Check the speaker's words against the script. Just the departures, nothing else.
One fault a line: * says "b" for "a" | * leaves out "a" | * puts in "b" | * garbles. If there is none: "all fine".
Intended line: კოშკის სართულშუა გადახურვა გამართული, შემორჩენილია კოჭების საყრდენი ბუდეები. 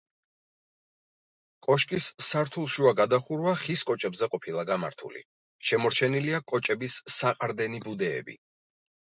* puts in "ხის კოჭებზე ყოფილა"